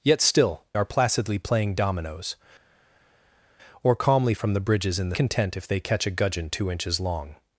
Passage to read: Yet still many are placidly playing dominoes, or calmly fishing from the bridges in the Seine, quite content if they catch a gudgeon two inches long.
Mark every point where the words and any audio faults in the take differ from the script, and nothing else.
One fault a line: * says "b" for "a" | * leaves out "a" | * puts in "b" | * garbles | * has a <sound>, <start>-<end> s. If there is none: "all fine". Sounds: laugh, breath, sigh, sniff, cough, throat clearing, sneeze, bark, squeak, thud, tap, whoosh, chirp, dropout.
* leaves out "many"
* leaves out "fishing"
* leaves out "Seine quite"